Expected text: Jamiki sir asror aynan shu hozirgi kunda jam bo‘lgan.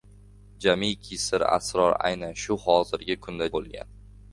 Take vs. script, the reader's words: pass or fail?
fail